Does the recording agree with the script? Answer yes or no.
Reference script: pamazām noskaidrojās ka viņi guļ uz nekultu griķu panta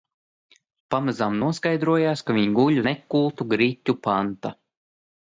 no